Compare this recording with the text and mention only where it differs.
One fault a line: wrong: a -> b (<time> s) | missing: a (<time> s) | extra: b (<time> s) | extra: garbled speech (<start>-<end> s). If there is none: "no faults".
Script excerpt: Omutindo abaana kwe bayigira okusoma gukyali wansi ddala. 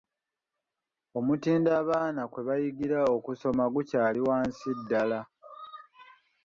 no faults